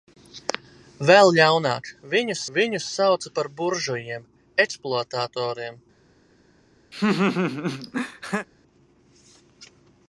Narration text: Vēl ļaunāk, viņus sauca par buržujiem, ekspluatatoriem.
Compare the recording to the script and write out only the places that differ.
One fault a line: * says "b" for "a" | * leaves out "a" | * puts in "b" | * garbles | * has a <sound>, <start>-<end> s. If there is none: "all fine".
* puts in "viņus"
* has a laugh, 6.9-8.5 s